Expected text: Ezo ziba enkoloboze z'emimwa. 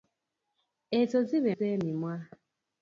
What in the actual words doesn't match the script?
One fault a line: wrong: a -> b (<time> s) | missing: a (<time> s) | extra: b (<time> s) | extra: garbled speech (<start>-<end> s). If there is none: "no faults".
missing: enkoloboze (1.5 s)